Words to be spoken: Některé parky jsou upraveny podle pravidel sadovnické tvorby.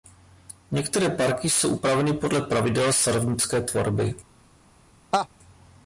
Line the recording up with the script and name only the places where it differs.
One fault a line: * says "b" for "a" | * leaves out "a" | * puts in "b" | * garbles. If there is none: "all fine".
all fine